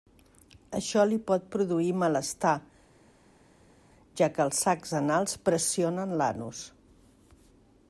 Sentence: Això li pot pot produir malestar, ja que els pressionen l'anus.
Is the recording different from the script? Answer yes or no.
yes